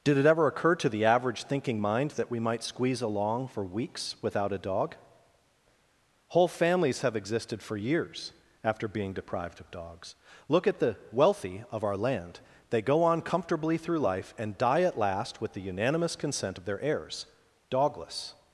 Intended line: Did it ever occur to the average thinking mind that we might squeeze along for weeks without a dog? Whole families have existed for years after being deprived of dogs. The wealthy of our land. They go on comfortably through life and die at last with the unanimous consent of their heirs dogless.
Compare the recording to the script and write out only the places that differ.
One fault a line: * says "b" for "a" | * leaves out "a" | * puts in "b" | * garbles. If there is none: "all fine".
* puts in "Look at"